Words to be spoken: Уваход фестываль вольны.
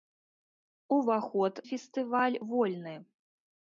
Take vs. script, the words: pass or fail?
pass